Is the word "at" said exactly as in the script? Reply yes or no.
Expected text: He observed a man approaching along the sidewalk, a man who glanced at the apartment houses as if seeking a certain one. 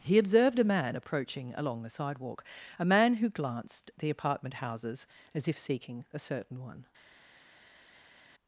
no